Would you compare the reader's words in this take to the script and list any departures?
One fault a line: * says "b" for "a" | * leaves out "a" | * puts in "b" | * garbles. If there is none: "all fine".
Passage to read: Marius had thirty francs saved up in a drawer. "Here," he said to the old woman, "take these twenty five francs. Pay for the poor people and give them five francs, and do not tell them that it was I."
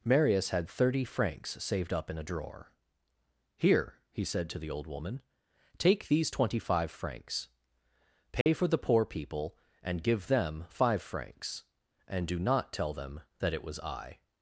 all fine